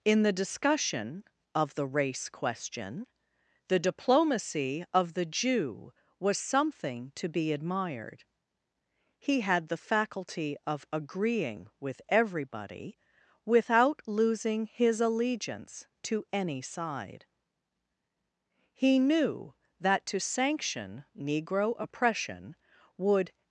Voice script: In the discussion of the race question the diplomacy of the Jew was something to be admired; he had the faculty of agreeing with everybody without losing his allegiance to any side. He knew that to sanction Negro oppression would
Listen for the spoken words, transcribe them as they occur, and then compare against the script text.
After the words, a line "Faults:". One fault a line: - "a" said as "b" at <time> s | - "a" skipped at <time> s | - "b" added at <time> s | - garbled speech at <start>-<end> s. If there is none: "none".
In the discussion of the race question the diplomacy of the Jew was something to be admired; he had the faculty of agreeing with everybody without losing his allegiance to any side. He knew that to sanction Negro oppression would
Faults:
none